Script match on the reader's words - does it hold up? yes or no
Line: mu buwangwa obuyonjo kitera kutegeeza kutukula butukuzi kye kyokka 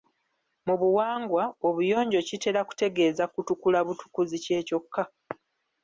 yes